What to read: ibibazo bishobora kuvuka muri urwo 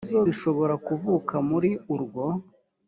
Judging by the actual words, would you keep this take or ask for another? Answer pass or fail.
pass